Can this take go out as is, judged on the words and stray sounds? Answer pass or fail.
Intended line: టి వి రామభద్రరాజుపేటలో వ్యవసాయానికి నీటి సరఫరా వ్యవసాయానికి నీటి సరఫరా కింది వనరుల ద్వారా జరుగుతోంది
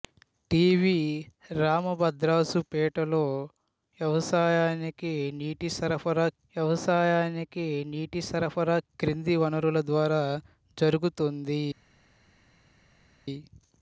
pass